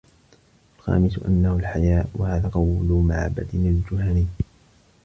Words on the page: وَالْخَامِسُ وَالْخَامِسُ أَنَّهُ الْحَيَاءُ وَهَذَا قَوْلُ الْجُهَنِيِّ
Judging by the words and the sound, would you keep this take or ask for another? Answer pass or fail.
fail